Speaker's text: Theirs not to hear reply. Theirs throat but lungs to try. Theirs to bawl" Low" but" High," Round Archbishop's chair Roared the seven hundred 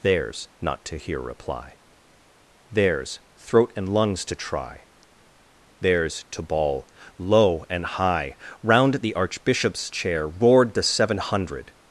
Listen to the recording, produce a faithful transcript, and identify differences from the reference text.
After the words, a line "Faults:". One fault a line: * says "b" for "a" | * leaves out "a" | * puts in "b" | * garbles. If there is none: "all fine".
Theirs not to hear reply. Theirs throat and lungs to try. Theirs to bawl" Low" and" High," Round the Archbishop's chair Roared the seven hundred
Faults:
* says "and" for "but"
* says "and" for "but"
* puts in "the"